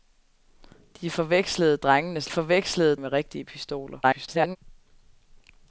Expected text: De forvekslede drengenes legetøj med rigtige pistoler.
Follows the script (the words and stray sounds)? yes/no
no